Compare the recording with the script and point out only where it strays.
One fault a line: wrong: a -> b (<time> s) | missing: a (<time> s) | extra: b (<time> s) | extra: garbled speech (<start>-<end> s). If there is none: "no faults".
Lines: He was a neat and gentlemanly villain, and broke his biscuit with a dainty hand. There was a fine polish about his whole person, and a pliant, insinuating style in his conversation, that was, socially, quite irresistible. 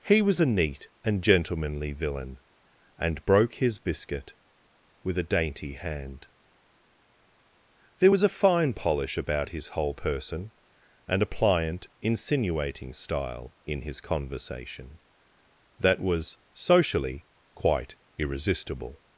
no faults